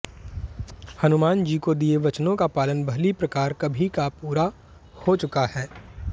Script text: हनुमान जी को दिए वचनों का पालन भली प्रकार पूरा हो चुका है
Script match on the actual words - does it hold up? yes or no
no